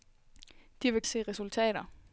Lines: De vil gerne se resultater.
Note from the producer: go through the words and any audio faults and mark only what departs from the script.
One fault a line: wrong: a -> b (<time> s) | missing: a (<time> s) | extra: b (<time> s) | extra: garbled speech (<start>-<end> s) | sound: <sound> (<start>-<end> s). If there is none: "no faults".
missing: gerne (1.0 s)